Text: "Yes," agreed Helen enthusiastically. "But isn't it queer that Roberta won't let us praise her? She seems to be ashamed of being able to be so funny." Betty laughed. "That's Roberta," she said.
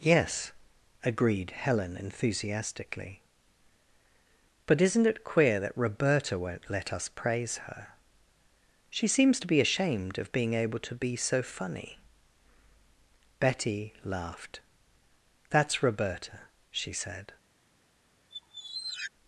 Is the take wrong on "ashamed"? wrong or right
right